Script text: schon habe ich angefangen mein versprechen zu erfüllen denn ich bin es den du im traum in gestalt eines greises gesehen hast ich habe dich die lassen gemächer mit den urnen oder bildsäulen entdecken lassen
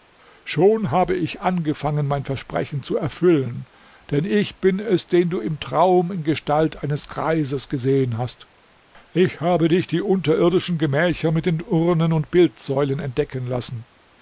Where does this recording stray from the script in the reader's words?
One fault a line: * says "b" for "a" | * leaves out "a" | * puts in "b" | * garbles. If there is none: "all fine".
* says "unterirdischen" for "lassen"
* says "und" for "oder"